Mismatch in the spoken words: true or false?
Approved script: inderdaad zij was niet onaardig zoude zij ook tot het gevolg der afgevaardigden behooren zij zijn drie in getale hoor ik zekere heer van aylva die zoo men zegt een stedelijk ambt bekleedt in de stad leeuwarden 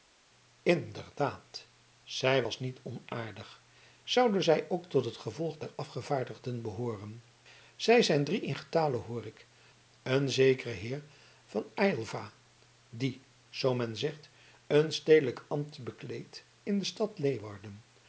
true